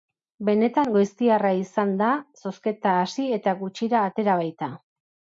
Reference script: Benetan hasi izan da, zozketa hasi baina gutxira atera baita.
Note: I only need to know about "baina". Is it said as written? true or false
false